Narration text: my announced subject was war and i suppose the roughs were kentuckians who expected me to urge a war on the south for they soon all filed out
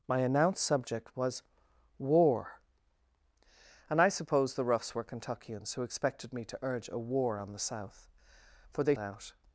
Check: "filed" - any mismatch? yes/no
yes